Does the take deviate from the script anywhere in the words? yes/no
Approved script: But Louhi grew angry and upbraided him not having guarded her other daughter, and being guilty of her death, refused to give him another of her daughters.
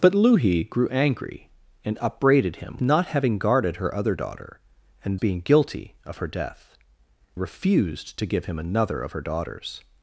no